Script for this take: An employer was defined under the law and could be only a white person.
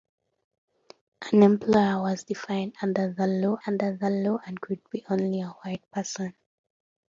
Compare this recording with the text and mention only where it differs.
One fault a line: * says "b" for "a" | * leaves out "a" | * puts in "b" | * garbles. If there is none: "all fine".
* puts in "under the law"